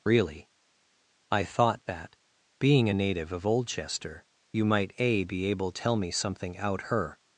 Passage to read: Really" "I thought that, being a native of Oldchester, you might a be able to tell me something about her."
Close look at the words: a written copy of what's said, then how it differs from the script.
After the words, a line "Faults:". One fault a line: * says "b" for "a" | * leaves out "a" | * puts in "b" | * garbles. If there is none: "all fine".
Really" "I thought that, being a native of Oldchester, you might a be able tell me something out her."
Faults:
* leaves out "to"
* says "out" for "about"